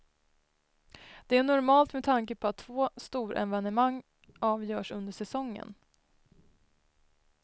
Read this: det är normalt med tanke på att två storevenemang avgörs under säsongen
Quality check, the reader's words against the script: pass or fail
pass